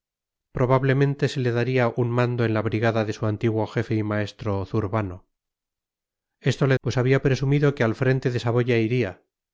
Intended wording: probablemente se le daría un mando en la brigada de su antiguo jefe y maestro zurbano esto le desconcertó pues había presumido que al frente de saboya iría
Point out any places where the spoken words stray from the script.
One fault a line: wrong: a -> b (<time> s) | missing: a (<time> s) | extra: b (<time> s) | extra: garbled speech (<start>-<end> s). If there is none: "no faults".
missing: desconcertó (6.8 s)